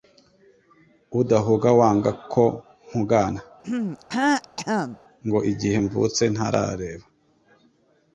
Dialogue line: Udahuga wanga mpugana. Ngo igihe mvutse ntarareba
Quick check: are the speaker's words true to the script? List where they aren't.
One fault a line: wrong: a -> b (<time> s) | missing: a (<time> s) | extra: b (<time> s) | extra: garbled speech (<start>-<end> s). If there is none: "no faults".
extra: ko (2.3 s)